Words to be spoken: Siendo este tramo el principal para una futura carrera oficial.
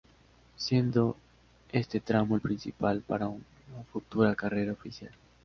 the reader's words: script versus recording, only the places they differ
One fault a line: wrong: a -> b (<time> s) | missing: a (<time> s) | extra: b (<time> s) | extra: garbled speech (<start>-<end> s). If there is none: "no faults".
no faults